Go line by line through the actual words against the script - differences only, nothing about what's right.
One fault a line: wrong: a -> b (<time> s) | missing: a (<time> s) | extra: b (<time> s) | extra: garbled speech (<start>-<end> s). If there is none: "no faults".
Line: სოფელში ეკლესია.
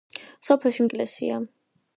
no faults